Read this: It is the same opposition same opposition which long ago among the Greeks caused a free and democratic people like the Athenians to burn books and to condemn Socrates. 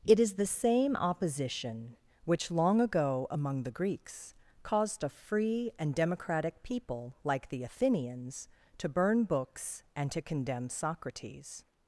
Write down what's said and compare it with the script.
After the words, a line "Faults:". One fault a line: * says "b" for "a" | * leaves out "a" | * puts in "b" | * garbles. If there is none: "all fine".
It is the same opposition which long ago among the Greeks caused a free and democratic people like the Athenians to burn books and to condemn Socrates.
Faults:
* leaves out "same opposition"